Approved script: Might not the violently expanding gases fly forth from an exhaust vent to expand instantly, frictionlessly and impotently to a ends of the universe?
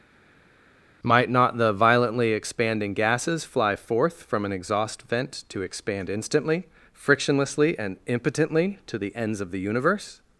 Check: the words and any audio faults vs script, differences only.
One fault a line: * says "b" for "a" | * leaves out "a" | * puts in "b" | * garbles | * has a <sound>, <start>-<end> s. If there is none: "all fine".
* says "the" for "a"